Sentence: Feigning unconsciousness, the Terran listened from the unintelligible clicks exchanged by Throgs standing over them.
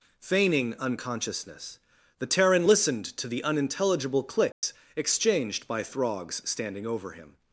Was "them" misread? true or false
true